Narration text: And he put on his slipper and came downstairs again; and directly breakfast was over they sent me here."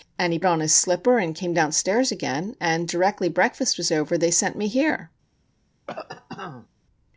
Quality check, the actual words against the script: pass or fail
fail